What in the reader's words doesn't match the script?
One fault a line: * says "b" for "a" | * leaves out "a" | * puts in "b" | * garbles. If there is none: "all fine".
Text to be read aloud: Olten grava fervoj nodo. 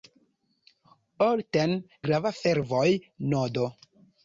all fine